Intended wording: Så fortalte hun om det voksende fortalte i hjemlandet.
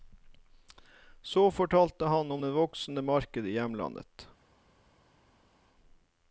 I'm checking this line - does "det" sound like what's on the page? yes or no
yes